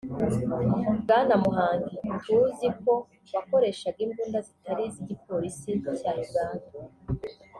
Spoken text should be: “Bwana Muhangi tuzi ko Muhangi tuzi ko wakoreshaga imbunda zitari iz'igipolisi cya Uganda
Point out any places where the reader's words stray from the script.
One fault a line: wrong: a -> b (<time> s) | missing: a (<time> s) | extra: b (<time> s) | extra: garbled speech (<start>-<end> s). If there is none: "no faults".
missing: Muhangi tuzi ko (2.9 s)